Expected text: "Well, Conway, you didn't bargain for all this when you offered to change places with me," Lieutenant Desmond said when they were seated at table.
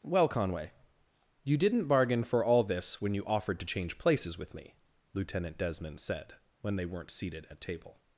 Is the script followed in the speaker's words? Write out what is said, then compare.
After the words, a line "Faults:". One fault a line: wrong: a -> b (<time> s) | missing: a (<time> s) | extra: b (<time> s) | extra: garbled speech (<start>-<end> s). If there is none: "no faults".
"Well, Conway, you didn't bargain for all this when you offered to change places with me," Lieutenant Desmond said when they weren't seated at table.
Faults:
wrong: were -> weren't (6.8 s)